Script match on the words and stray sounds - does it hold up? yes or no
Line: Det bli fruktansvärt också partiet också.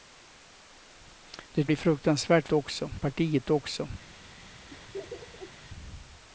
no